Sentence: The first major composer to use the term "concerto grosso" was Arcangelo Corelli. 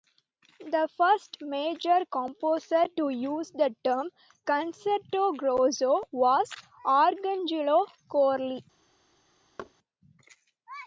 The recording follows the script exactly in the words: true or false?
true